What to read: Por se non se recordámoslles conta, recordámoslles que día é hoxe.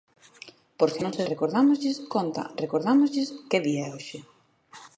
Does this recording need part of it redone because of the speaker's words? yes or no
no